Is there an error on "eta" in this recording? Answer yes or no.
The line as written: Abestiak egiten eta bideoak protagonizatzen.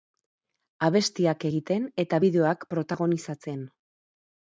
no